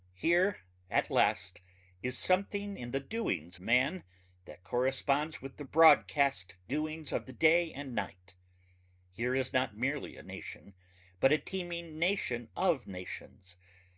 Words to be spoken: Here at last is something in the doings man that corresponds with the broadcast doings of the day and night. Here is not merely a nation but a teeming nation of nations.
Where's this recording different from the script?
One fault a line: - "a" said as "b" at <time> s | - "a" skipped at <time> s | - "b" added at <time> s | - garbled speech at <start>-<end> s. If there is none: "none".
none